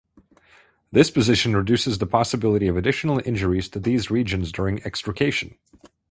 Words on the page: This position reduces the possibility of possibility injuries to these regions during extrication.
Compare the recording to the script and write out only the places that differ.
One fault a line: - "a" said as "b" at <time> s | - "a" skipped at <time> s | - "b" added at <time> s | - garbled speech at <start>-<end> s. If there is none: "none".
- "possibility" said as "additional" at 2.8 s